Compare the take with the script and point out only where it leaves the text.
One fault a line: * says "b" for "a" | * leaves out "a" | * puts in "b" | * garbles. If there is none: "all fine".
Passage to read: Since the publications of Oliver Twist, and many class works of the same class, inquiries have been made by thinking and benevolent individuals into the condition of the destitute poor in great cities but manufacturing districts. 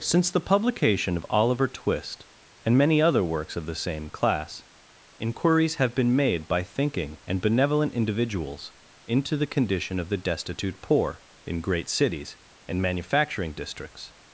* says "publication" for "publications"
* says "other" for "class"
* says "and" for "but"